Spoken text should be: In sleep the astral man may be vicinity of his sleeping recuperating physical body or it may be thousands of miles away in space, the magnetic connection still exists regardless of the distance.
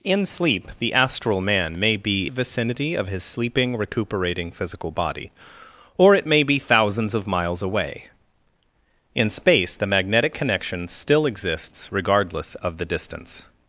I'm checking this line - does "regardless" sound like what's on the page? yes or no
yes